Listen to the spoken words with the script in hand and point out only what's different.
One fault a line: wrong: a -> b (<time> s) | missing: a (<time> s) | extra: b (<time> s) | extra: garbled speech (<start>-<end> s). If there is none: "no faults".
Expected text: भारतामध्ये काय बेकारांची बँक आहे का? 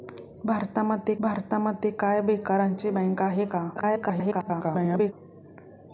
extra: भारतामध्ये (1.2 s)
extra: garbled speech (3.7-5.1 s)